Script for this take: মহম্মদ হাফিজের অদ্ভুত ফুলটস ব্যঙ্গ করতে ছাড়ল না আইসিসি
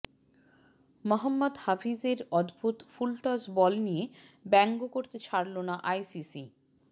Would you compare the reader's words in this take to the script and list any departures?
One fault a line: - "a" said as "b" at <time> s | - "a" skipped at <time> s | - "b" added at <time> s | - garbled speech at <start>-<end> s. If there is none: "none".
- "বল নিয়ে" added at 3.6 s